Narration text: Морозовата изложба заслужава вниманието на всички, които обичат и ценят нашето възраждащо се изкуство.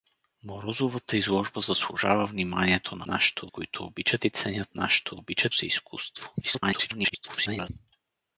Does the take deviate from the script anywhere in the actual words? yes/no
yes